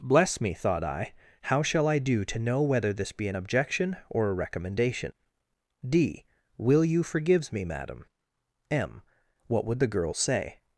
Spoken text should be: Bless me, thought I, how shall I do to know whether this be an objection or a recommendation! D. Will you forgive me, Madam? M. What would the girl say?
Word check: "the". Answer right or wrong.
right